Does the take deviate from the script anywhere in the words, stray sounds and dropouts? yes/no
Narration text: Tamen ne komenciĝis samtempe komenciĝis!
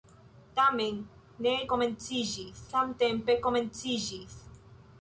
no